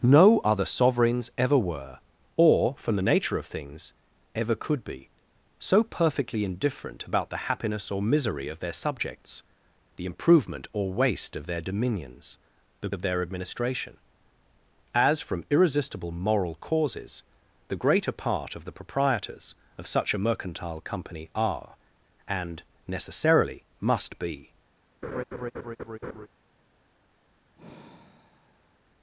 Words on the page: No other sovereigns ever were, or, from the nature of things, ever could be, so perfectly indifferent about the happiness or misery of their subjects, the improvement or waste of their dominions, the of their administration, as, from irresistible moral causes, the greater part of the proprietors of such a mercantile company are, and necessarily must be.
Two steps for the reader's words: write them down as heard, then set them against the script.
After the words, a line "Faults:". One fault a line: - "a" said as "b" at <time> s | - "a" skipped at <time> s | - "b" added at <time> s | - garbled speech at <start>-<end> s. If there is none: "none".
No other sovereigns ever were, or, from the nature of things, ever could be, so perfectly indifferent about the happiness or misery of their subjects, the improvement or waste of their dominions, the of their administration, as, from irresistible moral causes, the greater part of the proprietors of such a mercantile company are, and necessarily must be.
Faults:
none